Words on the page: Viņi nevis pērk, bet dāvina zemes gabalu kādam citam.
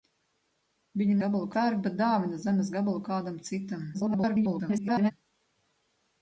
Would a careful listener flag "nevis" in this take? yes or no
yes